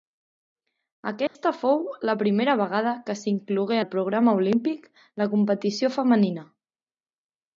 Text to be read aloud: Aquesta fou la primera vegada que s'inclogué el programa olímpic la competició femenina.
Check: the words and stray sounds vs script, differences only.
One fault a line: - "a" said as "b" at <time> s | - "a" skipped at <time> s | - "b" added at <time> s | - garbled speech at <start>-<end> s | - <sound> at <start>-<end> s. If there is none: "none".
- dropout at 1.3-1.4 s